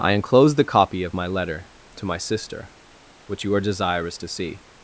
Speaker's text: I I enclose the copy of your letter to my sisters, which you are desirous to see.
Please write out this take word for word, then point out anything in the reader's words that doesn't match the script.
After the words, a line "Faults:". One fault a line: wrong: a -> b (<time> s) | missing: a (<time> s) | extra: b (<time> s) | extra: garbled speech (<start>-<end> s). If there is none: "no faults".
I enclose the copy of my letter to my sister, which you are desirous to see.
Faults:
missing: I (0.1 s)
wrong: your -> my (1.1 s)
wrong: sisters -> sister (2.2 s)